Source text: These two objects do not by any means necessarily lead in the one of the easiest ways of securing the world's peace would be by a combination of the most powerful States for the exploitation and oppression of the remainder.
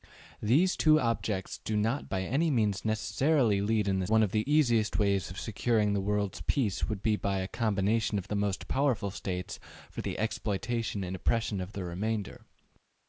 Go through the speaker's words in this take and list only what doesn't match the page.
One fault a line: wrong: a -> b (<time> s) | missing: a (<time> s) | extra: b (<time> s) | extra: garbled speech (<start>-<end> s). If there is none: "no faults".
no faults